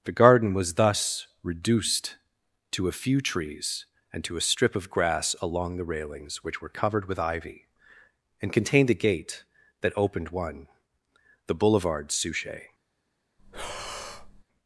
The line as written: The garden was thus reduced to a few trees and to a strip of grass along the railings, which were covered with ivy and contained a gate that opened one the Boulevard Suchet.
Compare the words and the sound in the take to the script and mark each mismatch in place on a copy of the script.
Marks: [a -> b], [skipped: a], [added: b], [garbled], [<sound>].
The garden was thus reduced to a few trees and to a strip of grass along the railings, which were covered with ivy and contained a gate that opened one the Boulevard Suchet. [breath]